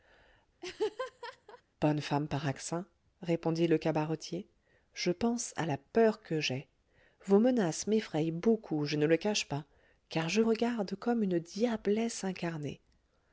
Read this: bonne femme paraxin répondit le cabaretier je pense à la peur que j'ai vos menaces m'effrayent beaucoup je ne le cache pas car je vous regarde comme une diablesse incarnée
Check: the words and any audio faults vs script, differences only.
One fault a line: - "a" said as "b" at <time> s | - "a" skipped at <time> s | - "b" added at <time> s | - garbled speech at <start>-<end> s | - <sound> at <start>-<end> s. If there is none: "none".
- laugh at 0.6-1.6 s
- "vous" skipped at 10.4 s